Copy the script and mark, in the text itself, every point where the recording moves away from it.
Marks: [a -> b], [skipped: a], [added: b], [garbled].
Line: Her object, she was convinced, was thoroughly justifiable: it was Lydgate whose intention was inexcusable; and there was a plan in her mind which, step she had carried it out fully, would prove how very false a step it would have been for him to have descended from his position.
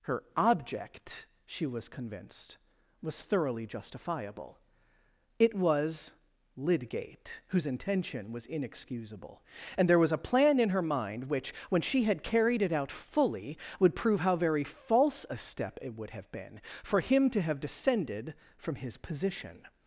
Her object, she was convinced, was thoroughly justifiable: it was Lydgate whose intention was inexcusable; and there was a plan in her mind which, [step -> when] she had carried it out fully, would prove how very false a step it would have been for him to have descended from his position.